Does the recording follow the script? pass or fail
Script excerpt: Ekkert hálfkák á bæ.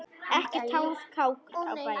pass